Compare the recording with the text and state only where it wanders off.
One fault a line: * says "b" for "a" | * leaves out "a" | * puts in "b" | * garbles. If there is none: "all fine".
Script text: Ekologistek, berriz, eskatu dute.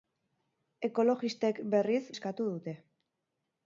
all fine